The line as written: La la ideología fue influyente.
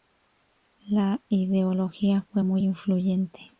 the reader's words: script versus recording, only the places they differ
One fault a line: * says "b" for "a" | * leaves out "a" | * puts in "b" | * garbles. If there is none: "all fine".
* leaves out "la"
* puts in "muy"